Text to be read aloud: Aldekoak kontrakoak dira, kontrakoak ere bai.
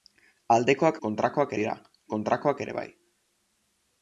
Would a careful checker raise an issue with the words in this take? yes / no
no